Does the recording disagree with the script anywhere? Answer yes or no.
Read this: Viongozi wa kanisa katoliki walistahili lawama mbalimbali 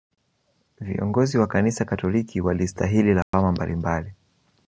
no